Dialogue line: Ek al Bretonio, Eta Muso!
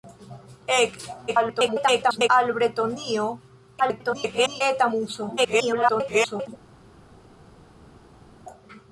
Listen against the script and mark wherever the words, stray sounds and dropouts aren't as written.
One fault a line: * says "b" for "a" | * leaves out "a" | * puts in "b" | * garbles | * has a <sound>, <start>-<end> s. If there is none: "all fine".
* garbles
* garbles
* garbles